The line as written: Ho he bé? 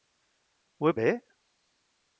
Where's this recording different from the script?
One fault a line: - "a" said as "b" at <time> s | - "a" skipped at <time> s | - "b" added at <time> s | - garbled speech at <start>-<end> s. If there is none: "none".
none